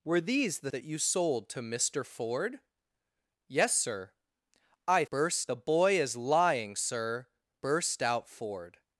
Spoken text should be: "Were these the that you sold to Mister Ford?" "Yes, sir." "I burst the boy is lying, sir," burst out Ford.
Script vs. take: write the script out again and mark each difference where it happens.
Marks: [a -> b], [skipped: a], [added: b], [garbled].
"Were these the that you sold to Mister Ford?" "Yes, sir." "I burst the boy is lying, sir," burst out Ford.